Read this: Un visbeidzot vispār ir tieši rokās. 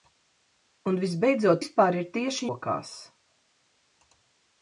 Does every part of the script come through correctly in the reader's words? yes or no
yes